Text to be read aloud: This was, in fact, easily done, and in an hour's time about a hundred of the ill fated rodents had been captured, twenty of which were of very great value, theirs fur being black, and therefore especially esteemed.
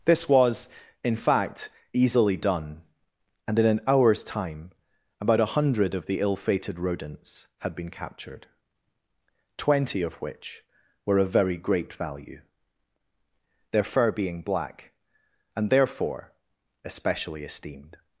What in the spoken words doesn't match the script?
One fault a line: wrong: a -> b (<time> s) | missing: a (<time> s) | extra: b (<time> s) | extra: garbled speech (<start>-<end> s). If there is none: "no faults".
wrong: theirs -> their (13.7 s)